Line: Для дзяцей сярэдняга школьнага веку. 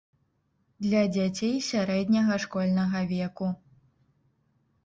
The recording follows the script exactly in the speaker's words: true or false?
true